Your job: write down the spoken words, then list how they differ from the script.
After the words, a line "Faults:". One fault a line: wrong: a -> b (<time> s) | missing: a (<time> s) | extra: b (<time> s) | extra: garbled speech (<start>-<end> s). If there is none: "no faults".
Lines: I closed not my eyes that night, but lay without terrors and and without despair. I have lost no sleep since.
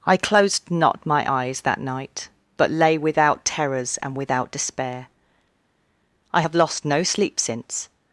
I closed not my eyes that night, but lay without terrors and without despair. I have lost no sleep since.
Faults:
missing: and (4.2 s)